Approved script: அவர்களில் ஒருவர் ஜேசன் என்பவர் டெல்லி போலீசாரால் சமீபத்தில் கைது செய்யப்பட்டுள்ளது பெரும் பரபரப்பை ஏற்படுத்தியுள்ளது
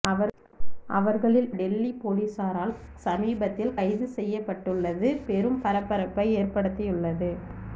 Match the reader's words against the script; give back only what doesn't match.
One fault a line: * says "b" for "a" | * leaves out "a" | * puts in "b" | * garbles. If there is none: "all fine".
* leaves out "ஒருவர் ஜேசன் என்பவர்"